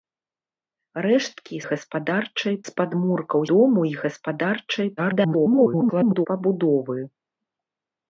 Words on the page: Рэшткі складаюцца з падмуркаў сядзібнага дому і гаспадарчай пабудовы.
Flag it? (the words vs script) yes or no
yes